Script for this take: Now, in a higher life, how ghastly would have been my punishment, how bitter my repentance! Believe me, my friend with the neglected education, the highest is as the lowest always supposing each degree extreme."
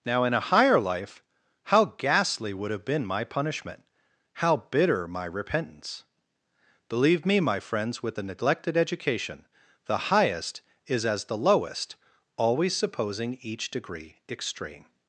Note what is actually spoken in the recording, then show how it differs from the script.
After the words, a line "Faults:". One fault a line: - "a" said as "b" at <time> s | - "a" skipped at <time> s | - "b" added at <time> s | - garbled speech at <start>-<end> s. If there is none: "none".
Now, in a higher life, how ghastly would have been my punishment, how bitter my repentance! Believe me, my friends with the neglected education, the highest is as the lowest always supposing each degree extreme."
Faults:
- "friend" said as "friends" at 7.6 s